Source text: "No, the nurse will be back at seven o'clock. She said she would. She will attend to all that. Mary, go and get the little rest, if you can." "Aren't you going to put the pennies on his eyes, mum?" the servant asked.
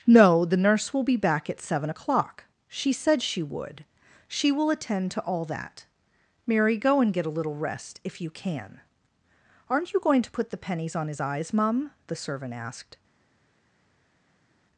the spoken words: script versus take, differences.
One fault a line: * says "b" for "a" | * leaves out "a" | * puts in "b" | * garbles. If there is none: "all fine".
* says "a" for "the"